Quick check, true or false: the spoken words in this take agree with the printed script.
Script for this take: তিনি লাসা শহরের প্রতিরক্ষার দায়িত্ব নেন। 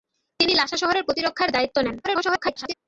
false